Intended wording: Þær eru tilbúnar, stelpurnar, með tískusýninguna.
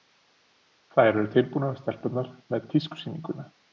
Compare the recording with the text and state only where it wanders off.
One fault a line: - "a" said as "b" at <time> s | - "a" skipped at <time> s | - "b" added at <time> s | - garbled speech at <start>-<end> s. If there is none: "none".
none